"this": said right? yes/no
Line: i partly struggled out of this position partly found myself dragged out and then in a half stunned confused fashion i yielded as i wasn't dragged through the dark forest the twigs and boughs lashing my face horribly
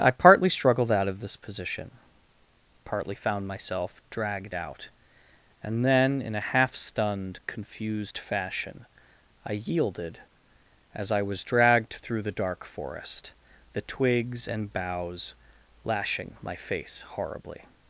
yes